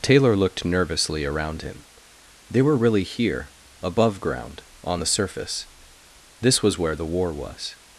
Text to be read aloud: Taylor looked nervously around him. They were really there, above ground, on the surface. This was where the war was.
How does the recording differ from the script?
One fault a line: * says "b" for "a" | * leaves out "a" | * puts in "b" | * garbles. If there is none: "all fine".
* says "here" for "there"